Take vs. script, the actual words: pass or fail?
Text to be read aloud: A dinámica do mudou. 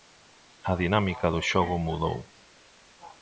fail